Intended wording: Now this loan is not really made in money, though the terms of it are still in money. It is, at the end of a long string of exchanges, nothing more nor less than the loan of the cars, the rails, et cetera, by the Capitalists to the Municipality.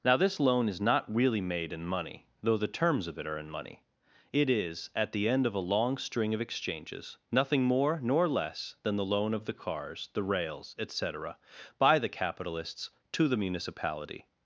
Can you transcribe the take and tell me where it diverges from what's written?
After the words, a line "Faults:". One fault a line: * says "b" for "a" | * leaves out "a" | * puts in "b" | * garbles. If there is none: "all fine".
Now this loan is not really made in money, though the terms of it are in money. It is, at the end of a long string of exchanges, nothing more nor less than the loan of the cars, the rails, et cetera, by the Capitalists to the Municipality.
Faults:
* leaves out "still"